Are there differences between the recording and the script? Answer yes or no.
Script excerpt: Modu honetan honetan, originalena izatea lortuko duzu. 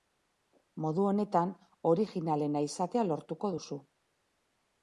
yes